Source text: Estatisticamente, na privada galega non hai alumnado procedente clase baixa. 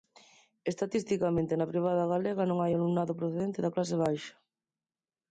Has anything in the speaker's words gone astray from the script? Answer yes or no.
yes